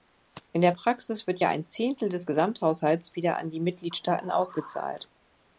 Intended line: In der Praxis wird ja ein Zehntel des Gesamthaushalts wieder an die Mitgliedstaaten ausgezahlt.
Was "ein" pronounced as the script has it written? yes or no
yes